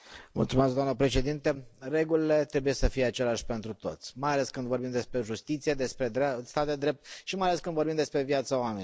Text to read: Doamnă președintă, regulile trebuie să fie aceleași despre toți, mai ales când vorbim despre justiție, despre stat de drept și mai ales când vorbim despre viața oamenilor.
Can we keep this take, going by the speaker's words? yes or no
no